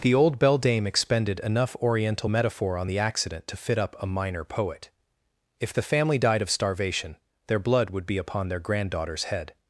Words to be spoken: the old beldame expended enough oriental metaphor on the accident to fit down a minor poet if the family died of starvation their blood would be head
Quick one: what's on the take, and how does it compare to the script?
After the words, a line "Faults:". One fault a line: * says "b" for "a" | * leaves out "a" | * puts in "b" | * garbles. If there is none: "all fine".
the old beldame expended enough oriental metaphor on the accident to fit up a minor poet if the family died of starvation their blood would be upon their granddaughter's head
Faults:
* says "up" for "down"
* puts in "upon their granddaughter's"